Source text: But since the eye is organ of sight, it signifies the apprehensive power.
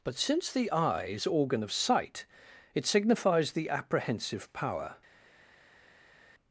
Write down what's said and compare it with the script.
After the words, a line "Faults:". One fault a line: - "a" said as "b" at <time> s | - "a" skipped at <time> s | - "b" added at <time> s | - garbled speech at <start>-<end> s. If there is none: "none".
But since the eye is organ of sight, it signifies the apprehensive power.
Faults:
none